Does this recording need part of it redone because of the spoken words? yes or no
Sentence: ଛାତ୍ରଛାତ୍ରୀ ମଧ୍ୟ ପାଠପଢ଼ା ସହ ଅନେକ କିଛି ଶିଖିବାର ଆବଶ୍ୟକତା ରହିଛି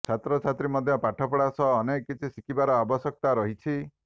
no